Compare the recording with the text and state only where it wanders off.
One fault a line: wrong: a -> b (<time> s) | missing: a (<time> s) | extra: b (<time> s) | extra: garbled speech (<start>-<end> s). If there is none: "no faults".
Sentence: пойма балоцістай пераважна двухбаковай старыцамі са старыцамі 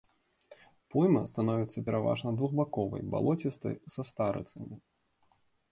wrong: балоцістай -> становіцца (1.3 s)
wrong: старыцамі -> балоцістай (3.2 s)